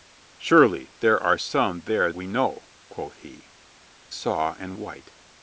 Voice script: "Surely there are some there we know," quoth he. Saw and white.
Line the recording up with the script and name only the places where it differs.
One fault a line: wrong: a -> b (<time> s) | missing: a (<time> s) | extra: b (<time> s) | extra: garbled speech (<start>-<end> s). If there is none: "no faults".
no faults